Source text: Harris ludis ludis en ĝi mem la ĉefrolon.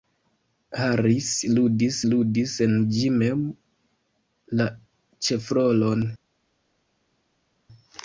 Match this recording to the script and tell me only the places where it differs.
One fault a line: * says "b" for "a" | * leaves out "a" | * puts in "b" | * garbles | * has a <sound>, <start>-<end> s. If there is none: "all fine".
all fine